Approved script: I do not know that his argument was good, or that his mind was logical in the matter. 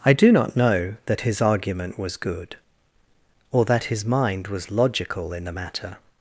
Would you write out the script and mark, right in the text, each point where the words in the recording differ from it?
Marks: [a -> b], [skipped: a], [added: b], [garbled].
I do not know that his argument was good, or that his mind was logical in the matter.